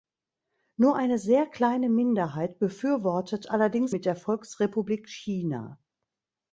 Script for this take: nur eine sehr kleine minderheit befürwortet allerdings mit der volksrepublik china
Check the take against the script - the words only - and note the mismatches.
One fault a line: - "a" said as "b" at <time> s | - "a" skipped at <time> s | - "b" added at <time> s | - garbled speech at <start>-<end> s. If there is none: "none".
none